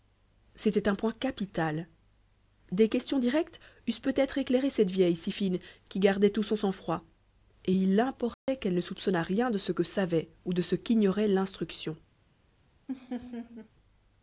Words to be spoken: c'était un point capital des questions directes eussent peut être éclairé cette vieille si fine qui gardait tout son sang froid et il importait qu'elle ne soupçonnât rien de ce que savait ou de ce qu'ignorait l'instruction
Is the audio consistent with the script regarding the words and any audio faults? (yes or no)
no